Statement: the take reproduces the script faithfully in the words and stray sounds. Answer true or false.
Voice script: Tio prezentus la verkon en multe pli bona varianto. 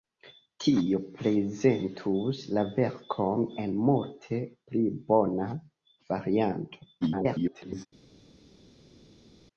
false